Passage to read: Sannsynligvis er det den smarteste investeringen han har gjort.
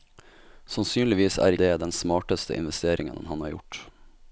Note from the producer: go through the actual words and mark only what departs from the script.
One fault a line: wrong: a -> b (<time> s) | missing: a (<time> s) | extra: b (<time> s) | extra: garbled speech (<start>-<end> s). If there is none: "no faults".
no faults